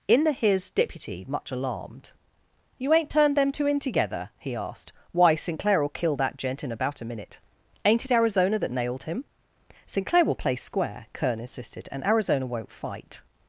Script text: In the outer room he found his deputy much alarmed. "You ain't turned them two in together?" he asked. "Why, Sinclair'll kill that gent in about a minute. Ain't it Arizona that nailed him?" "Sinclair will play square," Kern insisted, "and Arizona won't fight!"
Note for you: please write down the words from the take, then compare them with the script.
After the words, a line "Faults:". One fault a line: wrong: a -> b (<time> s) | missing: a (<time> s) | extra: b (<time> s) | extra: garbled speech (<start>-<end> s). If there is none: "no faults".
In the his deputy much alarmed. "You ain't turned them two in together?" he asked. "Why, Sinclair'll kill that gent in about a minute. Ain't it Arizona that nailed him?" "Sinclair will play square," Kern insisted, "and Arizona won't fight!"
Faults:
missing: outer room he found (0.3 s)